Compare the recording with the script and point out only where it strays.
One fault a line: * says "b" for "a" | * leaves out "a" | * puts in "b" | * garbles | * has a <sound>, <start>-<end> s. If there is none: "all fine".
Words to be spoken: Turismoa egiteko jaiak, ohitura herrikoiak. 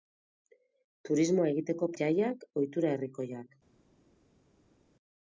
all fine